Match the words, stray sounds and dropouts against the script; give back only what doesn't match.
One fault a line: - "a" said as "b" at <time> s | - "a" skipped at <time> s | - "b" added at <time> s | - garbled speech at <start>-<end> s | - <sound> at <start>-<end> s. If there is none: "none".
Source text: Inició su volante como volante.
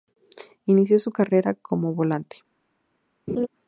- "volante" said as "carrera" at 1.1 s
- laugh at 3.3-3.5 s